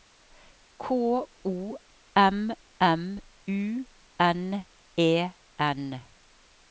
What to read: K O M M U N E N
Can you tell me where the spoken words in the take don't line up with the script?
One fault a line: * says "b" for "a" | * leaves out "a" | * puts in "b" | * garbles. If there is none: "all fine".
all fine